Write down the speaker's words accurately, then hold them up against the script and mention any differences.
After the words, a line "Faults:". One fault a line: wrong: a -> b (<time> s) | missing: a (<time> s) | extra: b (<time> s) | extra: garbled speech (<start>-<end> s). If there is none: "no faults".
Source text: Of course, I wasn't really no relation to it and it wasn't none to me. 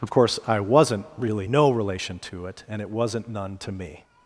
Of course, I wasn't really no relation to it and it wasn't none to me.
Faults:
no faults